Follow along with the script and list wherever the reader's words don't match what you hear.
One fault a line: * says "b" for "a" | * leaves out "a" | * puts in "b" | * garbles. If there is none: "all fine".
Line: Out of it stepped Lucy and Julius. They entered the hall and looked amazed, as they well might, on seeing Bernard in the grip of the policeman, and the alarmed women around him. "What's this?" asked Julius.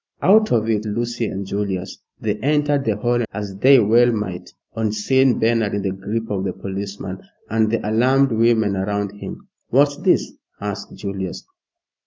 * leaves out "stepped"
* leaves out "and looked amazed"